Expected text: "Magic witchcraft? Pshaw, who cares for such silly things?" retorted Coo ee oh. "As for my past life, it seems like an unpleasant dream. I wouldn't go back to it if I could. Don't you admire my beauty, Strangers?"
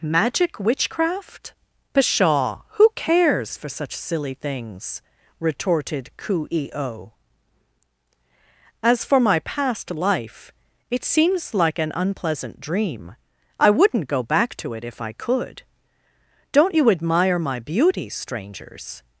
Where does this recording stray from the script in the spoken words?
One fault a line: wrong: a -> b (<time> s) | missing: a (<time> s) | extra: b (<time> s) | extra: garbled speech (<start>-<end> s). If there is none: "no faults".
no faults